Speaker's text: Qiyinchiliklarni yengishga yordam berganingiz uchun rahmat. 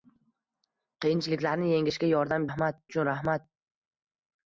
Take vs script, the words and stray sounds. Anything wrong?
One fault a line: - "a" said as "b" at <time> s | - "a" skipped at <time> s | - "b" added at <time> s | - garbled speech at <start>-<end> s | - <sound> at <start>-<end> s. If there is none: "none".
- "berganingiz" said as "rahmat" at 2.5 s